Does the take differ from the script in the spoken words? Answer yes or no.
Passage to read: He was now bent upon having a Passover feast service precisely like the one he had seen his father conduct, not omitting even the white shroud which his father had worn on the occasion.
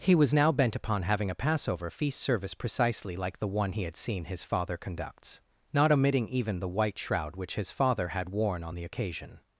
yes